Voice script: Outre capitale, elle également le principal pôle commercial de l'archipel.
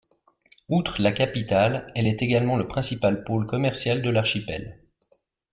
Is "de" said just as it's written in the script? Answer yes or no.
yes